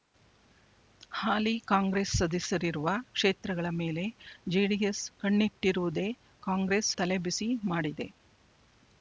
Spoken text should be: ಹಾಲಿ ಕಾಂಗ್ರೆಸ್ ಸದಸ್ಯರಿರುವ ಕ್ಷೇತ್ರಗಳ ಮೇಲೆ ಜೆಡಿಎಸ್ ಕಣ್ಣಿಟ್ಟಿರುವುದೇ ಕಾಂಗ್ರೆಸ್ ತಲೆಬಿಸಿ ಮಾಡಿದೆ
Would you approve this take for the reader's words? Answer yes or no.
yes